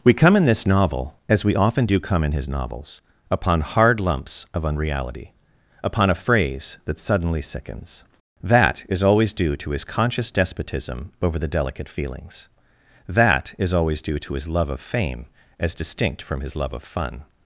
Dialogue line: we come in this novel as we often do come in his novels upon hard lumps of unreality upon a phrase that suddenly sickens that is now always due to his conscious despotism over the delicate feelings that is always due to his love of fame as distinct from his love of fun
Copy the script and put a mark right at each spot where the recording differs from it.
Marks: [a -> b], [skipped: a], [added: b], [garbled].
we come in this novel as we often do come in his novels upon hard lumps of unreality upon a phrase that suddenly sickens that is [skipped: now] always due to his conscious despotism over the delicate feelings that is always due to his love of fame as distinct from his love of fun